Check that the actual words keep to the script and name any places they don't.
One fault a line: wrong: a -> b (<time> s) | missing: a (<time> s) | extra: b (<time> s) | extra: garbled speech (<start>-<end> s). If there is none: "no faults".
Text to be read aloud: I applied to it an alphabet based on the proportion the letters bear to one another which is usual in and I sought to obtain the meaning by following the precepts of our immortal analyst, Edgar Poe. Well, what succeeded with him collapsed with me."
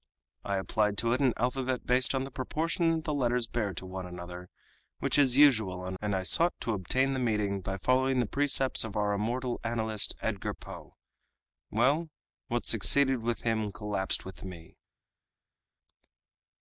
no faults